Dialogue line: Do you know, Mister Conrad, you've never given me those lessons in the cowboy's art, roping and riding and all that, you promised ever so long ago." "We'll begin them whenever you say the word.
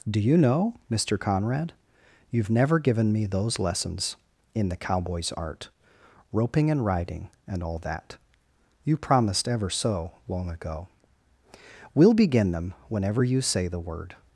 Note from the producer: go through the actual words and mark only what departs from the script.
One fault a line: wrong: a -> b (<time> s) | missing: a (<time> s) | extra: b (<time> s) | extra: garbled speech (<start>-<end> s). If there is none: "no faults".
no faults